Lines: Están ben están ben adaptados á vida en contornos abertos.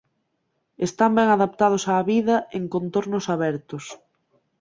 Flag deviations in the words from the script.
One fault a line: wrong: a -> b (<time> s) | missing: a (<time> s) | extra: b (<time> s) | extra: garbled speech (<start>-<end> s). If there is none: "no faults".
missing: están ben (1.3 s)